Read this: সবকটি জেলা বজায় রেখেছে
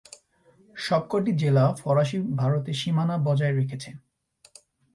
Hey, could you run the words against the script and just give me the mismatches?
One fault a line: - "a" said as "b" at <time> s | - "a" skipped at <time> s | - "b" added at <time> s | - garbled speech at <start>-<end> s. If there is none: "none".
- "ফরাসি ভারতে সীমানা" added at 1.8 s